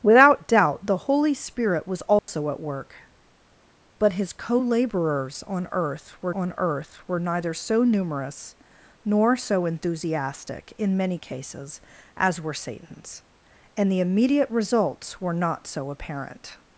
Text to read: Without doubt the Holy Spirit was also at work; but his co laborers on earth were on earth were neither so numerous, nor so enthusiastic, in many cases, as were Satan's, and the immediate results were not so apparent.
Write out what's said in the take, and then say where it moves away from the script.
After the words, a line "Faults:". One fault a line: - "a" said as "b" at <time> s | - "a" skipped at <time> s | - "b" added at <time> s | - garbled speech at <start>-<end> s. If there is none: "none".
Without doubt the Holy Spirit was also at work; but his co laborers on earth were on earth were neither so numerous, nor so enthusiastic, in many cases, as were Satan's, and the immediate results were not so apparent.
Faults:
none